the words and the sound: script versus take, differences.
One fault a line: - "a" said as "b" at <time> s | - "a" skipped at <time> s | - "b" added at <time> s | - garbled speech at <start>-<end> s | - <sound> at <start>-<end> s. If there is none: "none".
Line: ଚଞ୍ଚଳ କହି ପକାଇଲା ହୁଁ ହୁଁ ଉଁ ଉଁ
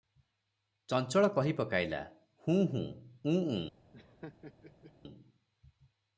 - laugh at 3.9-4.9 s